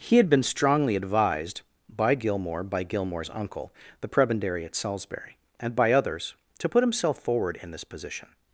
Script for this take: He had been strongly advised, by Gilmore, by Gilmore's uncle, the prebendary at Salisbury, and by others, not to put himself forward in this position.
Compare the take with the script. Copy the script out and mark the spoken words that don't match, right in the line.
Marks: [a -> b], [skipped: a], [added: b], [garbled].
He had been strongly advised, by Gilmore, by Gilmore's uncle, the prebendary at Salisbury, and by others, [skipped: not] to put himself forward in this position.